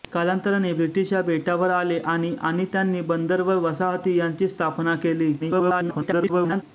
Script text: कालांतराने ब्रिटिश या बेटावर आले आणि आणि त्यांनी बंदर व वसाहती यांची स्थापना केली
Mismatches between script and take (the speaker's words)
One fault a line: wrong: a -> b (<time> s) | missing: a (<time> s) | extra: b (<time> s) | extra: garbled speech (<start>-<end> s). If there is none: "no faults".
extra: garbled speech (5.4-6.6 s)